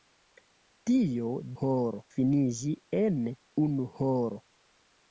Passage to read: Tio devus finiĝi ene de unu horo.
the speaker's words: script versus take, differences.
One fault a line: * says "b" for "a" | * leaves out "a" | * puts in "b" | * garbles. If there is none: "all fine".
* says "horo" for "devus"
* leaves out "de"